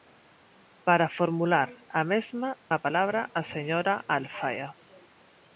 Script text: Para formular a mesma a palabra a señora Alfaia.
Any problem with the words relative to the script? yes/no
no